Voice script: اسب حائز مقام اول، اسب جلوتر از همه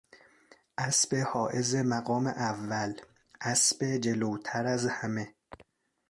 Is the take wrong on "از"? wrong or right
right